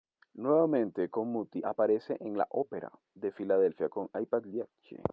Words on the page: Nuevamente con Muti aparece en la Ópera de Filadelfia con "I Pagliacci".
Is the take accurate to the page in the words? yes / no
yes